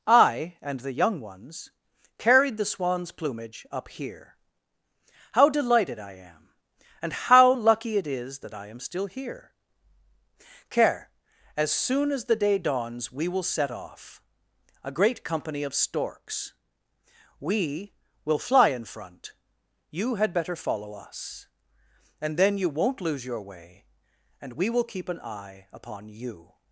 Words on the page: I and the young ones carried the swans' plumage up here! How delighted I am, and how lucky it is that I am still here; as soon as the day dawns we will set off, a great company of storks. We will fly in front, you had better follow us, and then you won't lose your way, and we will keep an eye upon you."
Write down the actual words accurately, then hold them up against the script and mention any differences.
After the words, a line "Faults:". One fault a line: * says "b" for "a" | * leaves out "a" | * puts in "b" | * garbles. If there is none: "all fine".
I and the young ones carried the swans' plumage up here! How delighted I am, and how lucky it is that I am still here; care as soon as the day dawns we will set off, a great company of storks. We will fly in front, you had better follow us, and then you won't lose your way, and we will keep an eye upon you."
Faults:
* puts in "care"